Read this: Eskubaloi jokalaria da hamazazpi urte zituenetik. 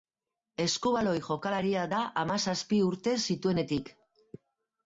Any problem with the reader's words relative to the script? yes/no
no